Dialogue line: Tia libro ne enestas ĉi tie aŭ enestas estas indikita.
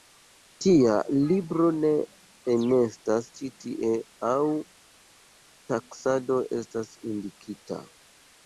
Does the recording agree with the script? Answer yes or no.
no